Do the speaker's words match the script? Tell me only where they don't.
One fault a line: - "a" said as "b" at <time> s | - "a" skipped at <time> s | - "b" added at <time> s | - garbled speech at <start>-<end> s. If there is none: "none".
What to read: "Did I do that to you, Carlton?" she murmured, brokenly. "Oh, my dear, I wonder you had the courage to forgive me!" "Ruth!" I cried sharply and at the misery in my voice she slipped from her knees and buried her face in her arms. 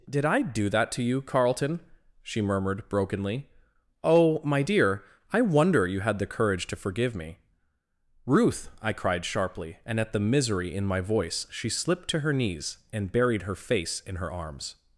- "from" said as "to" at 12.1 s